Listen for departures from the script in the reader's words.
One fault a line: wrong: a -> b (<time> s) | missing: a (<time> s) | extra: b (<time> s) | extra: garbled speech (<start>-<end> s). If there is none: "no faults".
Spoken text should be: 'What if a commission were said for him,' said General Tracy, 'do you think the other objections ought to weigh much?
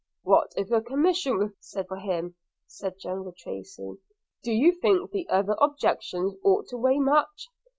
no faults